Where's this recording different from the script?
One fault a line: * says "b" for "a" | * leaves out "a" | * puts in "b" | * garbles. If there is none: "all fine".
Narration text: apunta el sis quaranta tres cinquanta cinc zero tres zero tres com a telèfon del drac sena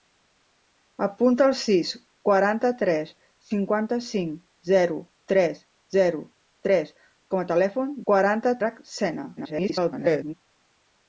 * says "quaranta" for "del"
* garbles